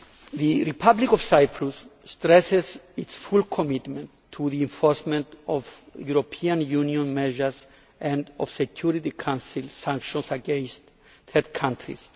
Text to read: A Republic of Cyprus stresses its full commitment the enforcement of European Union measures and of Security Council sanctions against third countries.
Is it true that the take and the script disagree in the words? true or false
true